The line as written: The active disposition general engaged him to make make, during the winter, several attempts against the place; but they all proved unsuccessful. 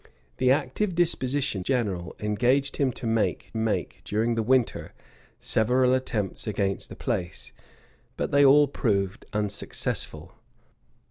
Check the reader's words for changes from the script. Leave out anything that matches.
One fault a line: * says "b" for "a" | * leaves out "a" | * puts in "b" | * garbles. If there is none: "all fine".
all fine